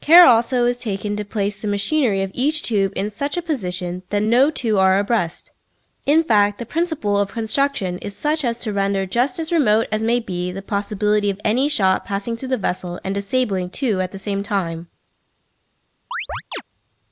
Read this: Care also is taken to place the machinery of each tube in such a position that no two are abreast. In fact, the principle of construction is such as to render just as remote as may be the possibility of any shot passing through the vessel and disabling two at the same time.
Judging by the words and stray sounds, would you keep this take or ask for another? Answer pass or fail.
fail